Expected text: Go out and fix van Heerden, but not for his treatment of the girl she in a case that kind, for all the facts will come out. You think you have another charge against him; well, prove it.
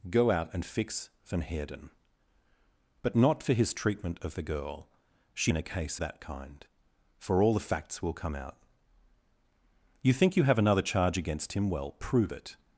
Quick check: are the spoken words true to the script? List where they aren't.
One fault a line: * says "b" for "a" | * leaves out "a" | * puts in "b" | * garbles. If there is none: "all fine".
all fine